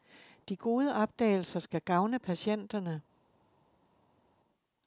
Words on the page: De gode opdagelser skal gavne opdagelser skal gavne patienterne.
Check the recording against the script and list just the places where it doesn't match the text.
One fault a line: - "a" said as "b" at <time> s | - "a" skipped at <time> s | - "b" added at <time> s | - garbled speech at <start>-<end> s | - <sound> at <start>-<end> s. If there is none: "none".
- "opdagelser skal gavne" skipped at 2.2 s